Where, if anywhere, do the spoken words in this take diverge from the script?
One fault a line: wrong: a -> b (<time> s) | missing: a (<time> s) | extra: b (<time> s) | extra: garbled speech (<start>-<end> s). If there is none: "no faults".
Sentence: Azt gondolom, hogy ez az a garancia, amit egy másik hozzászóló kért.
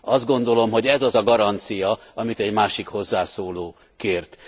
no faults